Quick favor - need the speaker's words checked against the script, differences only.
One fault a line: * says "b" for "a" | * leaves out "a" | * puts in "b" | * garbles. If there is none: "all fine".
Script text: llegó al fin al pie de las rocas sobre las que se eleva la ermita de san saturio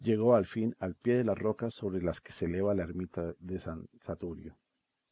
all fine